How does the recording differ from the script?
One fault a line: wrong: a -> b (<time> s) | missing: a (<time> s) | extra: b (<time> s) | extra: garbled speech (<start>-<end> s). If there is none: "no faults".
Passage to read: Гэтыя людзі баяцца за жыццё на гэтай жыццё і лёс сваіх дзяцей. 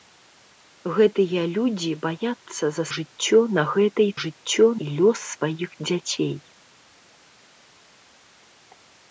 no faults